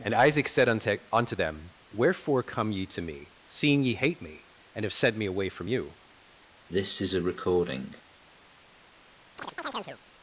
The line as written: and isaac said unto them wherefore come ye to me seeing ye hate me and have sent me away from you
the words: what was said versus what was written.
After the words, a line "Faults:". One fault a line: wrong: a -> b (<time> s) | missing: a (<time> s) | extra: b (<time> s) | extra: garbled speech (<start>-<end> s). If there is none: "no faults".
and isaac said unto unto them wherefore come ye to me seeing ye hate me and have sent me away from you
Faults:
extra: unto (1.1 s)